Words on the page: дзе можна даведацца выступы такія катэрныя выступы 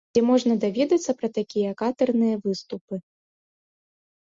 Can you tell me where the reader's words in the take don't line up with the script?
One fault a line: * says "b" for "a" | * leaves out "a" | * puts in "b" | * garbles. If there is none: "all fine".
* says "пра" for "выступы"